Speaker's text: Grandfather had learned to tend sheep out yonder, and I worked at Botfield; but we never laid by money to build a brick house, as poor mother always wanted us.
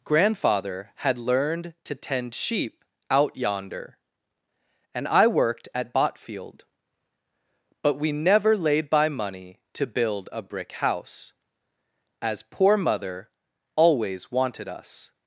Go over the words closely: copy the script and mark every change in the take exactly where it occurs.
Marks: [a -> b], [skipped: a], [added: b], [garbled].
Grandfather had learned to tend sheep out yonder, and I worked at Botfield; but we never laid by money to build a brick house, as poor mother always wanted us.